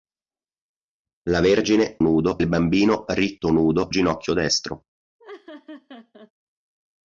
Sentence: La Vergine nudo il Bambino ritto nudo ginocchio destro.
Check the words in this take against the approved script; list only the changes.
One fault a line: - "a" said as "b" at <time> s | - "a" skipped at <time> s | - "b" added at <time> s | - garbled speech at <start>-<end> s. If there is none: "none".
none